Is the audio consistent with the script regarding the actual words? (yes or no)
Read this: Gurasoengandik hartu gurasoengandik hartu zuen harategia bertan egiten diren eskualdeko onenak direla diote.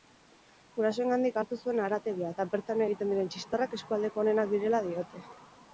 no